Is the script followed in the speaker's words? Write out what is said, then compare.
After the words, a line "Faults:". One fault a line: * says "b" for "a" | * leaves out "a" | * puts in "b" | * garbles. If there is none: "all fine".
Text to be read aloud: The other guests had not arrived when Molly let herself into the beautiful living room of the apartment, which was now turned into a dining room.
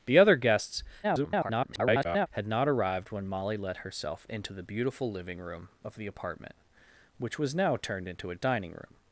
The other guests [garbled] had not arrived when Molly let herself into the beautiful living room of the apartment, which was now turned into a dining room.
Faults:
* garbles